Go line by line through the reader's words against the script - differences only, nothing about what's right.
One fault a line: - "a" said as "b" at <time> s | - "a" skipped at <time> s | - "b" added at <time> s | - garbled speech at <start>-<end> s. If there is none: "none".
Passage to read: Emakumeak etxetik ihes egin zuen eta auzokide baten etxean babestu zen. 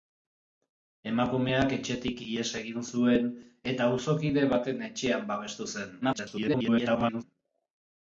- garbled speech at 6.0-7.2 s